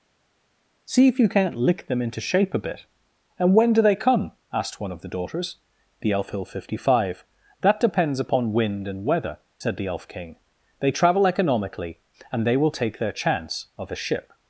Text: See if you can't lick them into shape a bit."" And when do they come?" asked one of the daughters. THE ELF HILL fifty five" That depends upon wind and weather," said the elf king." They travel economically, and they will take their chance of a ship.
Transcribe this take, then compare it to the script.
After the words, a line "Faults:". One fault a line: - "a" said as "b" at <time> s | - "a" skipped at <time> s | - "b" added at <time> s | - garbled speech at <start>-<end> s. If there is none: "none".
See if you can't lick them into shape a bit."" And when do they come?" asked one of the daughters. THE ELF HILL fifty five" That depends upon wind and weather," said the elf king." They travel economically, and they will take their chance of a ship.
Faults:
none